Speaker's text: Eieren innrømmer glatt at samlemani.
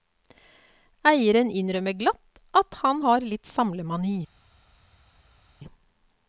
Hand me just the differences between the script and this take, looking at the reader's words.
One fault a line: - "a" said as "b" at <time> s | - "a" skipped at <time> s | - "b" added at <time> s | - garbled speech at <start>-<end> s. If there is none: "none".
- "han har litt" added at 2.8 s